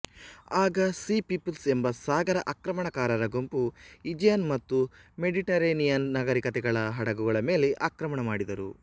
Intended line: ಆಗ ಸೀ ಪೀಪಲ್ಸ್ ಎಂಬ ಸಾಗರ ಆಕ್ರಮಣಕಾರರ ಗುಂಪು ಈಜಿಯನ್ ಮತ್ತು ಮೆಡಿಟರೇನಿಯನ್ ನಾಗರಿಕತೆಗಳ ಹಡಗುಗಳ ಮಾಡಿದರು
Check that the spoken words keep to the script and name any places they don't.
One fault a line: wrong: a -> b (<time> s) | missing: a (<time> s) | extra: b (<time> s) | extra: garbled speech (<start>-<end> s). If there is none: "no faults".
extra: ಮೇಲೆ ಆಕ್ರಮಣ (7.5 s)